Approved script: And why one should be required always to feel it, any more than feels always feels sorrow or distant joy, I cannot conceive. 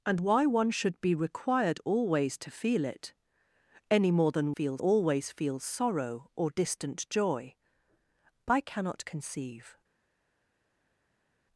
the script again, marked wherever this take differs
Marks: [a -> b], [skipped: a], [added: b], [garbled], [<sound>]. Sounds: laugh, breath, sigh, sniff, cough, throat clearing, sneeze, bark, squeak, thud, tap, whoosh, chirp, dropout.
And why one should be required always to feel it, any more than feels always feels sorrow or distant joy, I cannot conceive.